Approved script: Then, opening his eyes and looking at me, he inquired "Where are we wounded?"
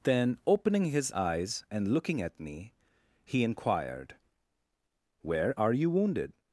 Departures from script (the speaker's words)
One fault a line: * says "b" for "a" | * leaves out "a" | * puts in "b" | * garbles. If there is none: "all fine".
* says "you" for "we"